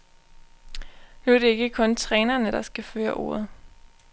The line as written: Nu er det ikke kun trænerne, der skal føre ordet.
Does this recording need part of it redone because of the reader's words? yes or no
no